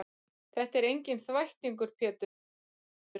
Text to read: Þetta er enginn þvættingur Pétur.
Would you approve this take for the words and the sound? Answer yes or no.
yes